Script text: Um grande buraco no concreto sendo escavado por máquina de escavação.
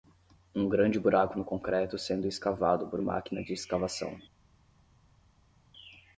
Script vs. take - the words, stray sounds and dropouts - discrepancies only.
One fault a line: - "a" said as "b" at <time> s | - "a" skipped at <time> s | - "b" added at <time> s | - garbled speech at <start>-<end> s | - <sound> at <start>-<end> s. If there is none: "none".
none